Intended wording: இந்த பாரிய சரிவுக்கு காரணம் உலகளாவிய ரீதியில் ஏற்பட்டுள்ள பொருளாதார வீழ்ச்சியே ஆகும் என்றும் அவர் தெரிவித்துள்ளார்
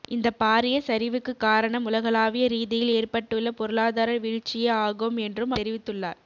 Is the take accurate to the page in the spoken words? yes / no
no